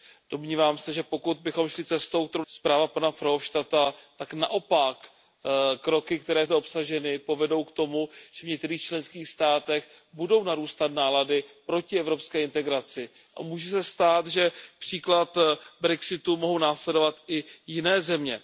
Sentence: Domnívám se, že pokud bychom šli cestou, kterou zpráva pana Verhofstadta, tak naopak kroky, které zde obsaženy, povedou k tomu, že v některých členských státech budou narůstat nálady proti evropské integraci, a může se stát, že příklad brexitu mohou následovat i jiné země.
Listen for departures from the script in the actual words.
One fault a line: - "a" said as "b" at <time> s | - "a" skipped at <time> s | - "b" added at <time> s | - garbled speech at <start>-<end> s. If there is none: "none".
none